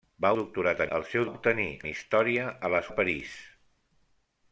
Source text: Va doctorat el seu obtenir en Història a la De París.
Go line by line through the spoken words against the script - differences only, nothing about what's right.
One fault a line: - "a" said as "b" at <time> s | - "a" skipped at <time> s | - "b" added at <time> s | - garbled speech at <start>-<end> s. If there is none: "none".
none